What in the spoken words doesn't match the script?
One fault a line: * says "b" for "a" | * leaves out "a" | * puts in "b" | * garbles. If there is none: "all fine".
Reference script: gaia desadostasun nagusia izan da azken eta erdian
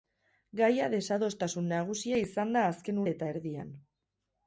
all fine